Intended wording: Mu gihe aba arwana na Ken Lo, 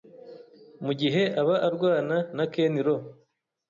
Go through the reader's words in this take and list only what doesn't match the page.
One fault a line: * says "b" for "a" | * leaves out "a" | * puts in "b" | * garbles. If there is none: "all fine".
all fine